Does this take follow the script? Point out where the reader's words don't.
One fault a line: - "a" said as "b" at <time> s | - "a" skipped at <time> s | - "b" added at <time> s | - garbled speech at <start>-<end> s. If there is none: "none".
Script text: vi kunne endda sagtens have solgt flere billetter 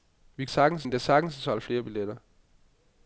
- "kunne" said as "sagtens" at 0.5 s